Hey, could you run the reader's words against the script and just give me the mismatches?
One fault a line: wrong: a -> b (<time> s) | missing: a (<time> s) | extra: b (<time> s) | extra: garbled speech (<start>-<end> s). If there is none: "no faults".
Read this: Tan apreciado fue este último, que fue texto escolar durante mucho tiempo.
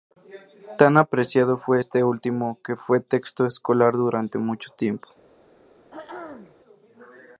no faults